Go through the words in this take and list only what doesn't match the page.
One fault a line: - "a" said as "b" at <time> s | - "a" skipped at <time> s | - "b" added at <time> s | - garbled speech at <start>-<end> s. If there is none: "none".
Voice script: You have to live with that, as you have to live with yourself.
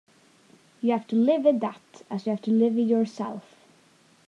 none